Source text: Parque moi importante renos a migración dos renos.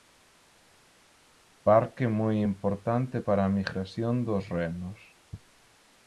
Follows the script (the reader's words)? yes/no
no